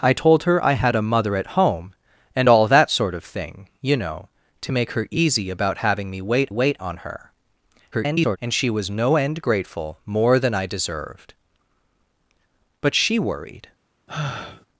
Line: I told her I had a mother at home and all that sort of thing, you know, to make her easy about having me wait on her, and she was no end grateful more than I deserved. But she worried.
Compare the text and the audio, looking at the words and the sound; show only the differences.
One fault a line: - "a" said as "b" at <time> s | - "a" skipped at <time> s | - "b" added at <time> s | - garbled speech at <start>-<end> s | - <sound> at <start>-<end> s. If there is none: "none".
- "wait" added at 6.5 s
- garbled speech at 7.9-8.4 s
- sigh at 14.1-14.7 s